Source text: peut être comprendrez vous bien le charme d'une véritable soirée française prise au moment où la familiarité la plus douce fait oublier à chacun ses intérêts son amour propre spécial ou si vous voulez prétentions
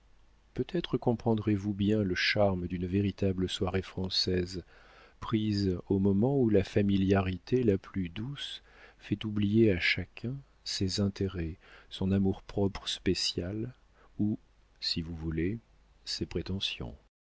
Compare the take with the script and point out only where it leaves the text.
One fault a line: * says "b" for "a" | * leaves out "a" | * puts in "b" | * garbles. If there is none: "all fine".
* puts in "ses"